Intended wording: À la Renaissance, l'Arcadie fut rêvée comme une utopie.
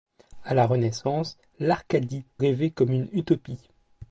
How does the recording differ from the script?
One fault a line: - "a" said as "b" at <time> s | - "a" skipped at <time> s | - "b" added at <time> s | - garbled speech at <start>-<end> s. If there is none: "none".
- "fut" skipped at 2.2 s